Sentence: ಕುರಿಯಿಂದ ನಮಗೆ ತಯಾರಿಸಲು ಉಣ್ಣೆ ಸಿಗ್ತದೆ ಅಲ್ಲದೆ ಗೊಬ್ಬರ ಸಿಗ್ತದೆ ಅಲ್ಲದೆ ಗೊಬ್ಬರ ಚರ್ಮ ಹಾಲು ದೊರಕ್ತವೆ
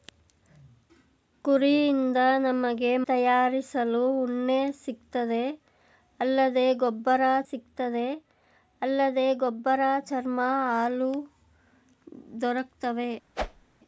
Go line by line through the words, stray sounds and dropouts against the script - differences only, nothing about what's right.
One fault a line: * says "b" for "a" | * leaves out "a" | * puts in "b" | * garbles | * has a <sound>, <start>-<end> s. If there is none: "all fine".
* has a whoosh, 13.4-13.7 s